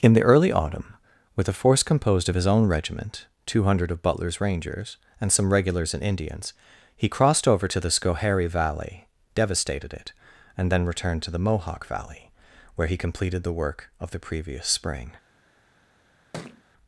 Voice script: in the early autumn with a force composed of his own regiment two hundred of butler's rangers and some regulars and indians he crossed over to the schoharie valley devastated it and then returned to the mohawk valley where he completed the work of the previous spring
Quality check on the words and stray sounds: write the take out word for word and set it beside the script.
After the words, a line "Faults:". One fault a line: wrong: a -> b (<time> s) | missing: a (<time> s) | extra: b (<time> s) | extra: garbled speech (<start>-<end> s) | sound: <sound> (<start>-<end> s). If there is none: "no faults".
in the early autumn with a force composed of his own regiment two hundred of butler's rangers and some regulars and indians he crossed over to the schoharie valley devastated it and then returned to the mohawk valley where he completed the work of the previous spring
Faults:
sound: thud (16.3-16.6 s)